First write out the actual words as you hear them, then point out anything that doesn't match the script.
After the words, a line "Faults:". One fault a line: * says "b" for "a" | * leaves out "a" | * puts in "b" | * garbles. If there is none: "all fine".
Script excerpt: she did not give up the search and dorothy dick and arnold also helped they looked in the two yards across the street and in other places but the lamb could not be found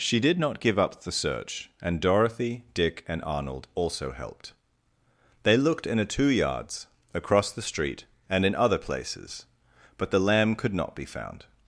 she did not give up the search and dorothy dick and arnold also helped they looked in a two yards across the street and in other places but the lamb could not be found
Faults:
* says "a" for "the"